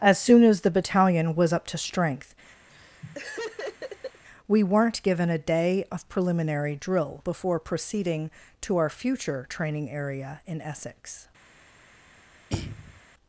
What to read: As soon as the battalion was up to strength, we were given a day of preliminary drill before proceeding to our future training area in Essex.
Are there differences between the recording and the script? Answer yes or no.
yes